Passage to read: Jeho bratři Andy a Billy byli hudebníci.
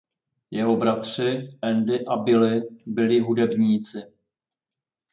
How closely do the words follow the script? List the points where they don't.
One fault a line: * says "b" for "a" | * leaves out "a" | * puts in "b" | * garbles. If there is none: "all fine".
all fine